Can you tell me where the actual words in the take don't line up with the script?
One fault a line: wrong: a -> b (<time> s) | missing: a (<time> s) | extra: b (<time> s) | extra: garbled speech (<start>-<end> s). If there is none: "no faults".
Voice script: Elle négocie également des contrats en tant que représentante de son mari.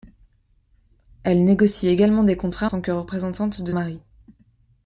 missing: en (2.7 s)
missing: son (3.7 s)